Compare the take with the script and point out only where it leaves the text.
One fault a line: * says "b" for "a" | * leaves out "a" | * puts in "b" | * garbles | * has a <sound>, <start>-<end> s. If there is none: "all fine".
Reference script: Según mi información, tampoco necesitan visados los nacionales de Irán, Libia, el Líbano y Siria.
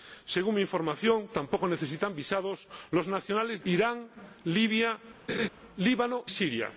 * leaves out "de"
* has a laugh, 5.3-5.5 s
* leaves out "y"